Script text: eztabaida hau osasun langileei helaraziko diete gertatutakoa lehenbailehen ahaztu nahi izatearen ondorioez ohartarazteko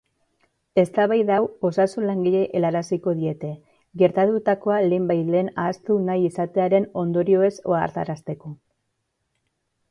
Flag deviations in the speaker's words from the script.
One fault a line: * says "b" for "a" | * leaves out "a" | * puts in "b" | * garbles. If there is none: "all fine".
all fine